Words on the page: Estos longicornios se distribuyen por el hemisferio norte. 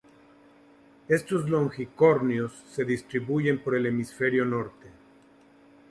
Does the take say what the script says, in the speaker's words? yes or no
yes